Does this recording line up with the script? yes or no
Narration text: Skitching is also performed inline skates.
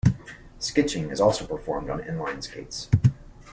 no